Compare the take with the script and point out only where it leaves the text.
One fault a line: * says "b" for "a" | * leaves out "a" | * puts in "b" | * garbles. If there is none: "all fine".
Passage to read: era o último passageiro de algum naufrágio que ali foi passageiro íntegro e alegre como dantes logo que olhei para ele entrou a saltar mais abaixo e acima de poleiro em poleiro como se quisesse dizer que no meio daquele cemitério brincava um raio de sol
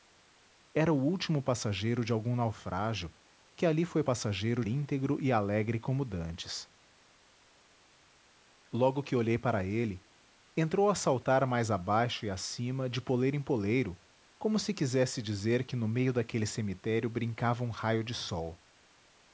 all fine